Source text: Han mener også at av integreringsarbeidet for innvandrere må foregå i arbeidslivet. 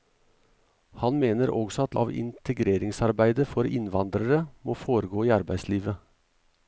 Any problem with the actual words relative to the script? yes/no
no